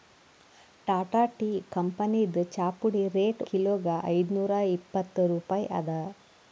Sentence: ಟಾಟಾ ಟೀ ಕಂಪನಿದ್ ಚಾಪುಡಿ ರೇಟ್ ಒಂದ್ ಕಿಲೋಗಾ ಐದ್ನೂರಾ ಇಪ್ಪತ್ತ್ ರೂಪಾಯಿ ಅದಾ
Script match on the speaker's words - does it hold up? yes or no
no